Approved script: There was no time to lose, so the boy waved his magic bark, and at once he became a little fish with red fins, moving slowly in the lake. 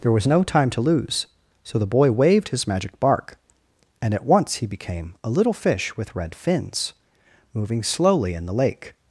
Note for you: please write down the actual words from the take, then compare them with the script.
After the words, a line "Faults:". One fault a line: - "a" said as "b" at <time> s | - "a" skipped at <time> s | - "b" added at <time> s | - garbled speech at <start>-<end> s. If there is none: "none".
There was no time to lose, so the boy waved his magic bark, and at once he became a little fish with red fins, moving slowly in the lake.
Faults:
none